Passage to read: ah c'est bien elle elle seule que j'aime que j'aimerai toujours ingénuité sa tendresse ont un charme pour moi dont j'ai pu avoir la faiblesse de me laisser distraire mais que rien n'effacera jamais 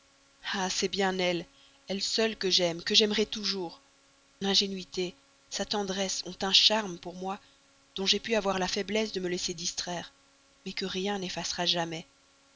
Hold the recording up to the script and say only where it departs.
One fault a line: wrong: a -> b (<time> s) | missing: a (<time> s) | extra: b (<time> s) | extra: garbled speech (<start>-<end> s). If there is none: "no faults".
no faults